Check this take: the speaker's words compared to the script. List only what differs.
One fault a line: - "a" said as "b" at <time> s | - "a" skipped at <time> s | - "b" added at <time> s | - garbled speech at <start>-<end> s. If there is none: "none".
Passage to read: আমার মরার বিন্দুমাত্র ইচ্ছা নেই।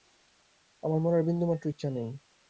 none